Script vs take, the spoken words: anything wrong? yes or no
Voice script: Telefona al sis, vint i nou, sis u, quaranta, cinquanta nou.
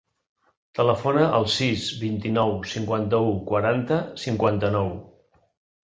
yes